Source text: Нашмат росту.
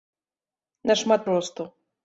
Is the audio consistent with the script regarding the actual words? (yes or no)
yes